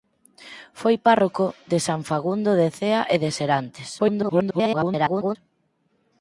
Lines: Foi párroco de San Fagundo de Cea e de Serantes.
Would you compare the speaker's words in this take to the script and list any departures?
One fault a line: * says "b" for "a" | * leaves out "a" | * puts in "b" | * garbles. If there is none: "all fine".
* garbles